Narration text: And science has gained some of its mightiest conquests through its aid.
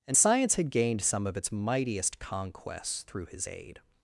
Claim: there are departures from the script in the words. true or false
true